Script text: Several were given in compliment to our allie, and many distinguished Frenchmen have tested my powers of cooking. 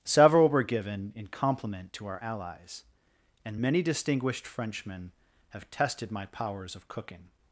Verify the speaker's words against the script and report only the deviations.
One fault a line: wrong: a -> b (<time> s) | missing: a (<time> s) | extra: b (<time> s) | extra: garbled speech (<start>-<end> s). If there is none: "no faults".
wrong: allie -> allies (2.2 s)